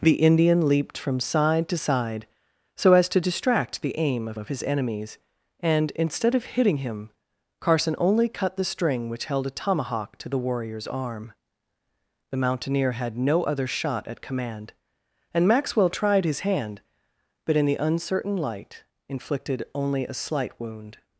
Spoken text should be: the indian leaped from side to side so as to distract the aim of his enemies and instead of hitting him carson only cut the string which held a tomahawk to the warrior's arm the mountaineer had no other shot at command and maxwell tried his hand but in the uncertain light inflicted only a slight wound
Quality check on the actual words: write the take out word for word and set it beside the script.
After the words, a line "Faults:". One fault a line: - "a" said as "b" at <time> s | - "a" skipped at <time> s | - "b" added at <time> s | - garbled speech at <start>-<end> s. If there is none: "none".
the indian leaped from side to side so as to distract the aim of of his enemies and instead of hitting him carson only cut the string which held a tomahawk to the warrior's arm the mountaineer had no other shot at command and maxwell tried his hand but in the uncertain light inflicted only a slight wound
Faults:
- "of" added at 4.4 s